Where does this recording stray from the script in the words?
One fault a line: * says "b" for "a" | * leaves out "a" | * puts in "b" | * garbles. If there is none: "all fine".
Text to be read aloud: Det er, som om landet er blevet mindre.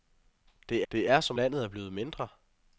* puts in "det"
* leaves out "om"